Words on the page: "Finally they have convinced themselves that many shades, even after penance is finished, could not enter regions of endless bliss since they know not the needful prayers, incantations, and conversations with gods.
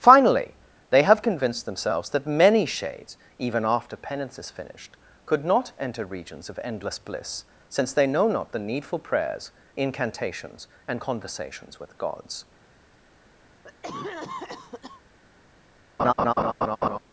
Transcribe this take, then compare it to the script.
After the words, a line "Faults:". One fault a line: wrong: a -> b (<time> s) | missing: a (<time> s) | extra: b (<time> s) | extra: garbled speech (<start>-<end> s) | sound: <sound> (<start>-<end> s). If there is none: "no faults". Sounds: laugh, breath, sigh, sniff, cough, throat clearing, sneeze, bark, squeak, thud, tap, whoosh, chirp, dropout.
"Finally they have convinced themselves that many shades, even after penance is finished, could not enter regions of endless bliss since they know not the needful prayers, incantations, and conversations with gods.
Faults:
sound: cough (13.6-15.0 s)
sound: laugh (16.0-17.0 s)